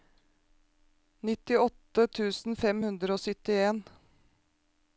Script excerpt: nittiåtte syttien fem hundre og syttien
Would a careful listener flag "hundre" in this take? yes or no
no